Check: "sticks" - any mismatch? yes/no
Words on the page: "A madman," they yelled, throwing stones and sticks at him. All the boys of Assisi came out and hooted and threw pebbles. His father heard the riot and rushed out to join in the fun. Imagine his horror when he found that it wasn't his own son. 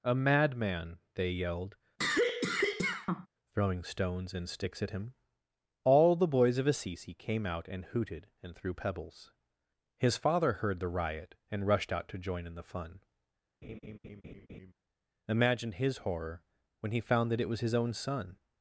no